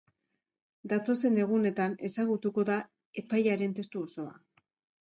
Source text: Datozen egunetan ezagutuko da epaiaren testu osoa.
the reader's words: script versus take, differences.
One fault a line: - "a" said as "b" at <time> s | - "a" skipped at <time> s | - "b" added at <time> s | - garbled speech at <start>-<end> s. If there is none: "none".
none